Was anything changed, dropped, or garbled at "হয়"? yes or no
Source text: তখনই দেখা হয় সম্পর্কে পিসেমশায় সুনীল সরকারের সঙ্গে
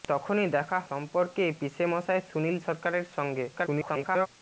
yes